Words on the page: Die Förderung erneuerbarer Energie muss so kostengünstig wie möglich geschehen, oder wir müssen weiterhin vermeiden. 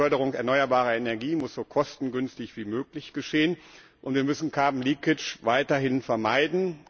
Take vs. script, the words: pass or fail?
fail